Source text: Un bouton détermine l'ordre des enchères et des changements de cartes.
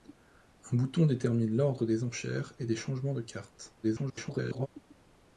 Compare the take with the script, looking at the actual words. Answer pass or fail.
fail